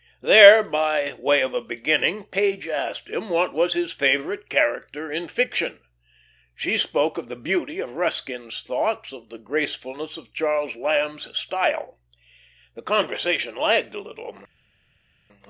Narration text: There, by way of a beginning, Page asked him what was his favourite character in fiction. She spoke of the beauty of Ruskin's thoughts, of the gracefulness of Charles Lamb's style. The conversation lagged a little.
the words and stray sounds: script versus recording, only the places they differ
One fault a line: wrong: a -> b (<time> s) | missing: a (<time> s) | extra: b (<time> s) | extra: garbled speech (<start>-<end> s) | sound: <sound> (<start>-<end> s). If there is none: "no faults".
no faults